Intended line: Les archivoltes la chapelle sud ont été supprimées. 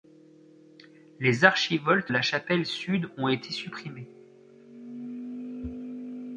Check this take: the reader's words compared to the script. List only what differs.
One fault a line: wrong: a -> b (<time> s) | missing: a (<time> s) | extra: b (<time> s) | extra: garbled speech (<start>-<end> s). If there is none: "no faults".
no faults